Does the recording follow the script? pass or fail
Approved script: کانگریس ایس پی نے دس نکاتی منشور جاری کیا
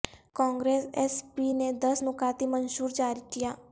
pass